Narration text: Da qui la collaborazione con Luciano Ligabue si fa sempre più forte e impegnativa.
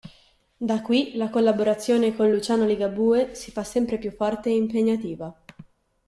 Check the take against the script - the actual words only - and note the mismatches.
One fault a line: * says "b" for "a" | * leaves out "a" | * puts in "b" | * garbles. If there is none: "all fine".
all fine